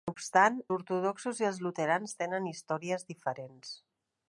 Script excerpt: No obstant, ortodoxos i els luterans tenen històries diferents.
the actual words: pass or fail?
pass